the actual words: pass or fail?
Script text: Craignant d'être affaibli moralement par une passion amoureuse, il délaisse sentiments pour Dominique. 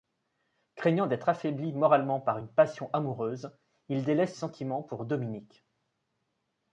pass